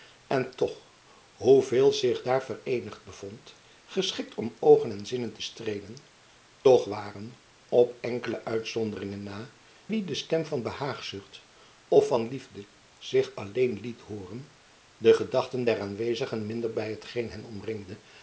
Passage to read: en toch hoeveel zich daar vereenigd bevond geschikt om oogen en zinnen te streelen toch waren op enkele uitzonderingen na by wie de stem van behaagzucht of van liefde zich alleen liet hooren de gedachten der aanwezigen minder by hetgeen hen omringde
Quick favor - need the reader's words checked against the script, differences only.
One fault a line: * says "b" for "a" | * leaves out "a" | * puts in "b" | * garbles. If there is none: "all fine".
* leaves out "by"